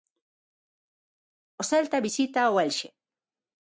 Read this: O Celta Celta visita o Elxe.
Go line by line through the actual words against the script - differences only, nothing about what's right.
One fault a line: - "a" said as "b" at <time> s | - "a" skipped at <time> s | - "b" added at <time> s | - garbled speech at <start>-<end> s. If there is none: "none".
- "Celta" skipped at 2.0 s